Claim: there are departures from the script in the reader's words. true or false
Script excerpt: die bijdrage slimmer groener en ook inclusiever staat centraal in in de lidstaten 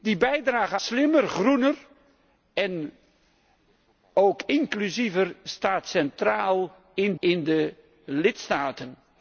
false